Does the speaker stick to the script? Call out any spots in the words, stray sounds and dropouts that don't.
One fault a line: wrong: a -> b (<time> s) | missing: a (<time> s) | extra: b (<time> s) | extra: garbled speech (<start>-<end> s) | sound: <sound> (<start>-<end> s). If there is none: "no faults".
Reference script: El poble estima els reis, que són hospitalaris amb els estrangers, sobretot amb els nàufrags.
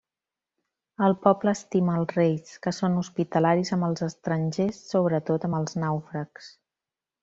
no faults